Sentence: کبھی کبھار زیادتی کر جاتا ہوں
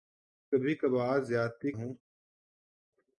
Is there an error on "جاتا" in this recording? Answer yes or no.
yes